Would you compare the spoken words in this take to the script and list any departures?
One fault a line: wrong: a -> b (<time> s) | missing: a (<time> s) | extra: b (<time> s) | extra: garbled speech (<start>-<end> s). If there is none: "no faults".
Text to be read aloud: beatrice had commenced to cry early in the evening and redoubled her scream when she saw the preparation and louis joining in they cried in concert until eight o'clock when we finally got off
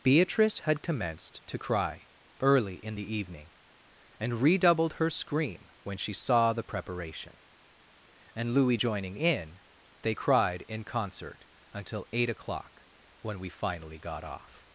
no faults